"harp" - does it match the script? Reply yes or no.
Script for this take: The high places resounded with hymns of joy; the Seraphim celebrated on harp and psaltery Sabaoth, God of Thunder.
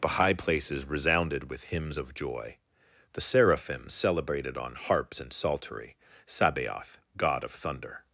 no